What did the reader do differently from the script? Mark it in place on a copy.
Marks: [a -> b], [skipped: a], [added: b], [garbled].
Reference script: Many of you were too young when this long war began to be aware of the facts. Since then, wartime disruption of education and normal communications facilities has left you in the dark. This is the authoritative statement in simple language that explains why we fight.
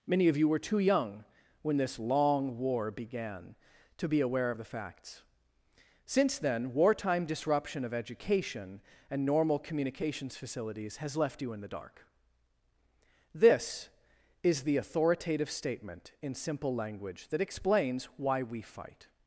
Many of you were too young when this long war began to be aware of the facts. Since then, wartime disruption of education and normal communications facilities has left you in the dark. This is the authoritative statement in simple language that explains why we fight.